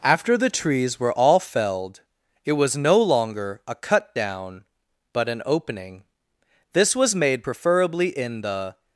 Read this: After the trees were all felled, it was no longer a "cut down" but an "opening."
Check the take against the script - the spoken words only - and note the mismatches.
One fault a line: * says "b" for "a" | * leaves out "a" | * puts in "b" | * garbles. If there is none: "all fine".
* puts in "This was made preferably in the"